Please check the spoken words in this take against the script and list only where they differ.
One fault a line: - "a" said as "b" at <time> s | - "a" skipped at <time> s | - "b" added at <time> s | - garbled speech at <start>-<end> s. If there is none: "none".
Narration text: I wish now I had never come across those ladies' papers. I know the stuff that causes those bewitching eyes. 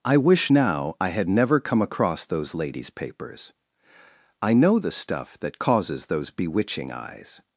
none